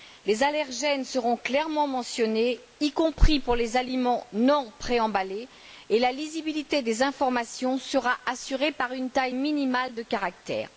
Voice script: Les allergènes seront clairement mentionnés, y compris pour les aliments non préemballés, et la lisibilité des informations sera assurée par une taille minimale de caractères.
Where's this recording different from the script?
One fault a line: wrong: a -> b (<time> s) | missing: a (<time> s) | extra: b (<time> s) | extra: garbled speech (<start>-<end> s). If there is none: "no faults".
no faults